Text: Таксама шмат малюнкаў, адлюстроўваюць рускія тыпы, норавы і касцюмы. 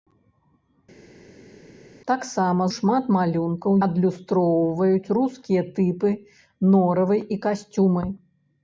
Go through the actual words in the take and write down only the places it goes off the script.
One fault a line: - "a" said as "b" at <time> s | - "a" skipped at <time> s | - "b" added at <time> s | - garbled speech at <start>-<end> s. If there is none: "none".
none